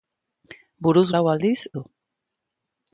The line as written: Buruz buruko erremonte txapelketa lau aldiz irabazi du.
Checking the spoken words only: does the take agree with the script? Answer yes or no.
no